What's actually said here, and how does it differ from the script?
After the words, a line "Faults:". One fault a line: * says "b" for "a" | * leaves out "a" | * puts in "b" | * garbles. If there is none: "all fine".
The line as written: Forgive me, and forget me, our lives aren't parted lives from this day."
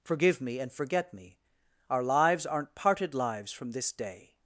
Forgive me, and forget me, our lives aren't parted lives from this day."
Faults:
all fine